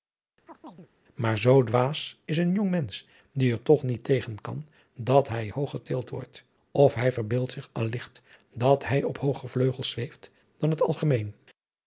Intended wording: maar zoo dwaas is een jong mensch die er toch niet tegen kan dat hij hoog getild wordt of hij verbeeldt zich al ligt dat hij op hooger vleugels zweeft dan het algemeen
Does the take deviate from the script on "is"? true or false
false